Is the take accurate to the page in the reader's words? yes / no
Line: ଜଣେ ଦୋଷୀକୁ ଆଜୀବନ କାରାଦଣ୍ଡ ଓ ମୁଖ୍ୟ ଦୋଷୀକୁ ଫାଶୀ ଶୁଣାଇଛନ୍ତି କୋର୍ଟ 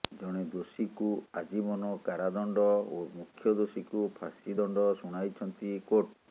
no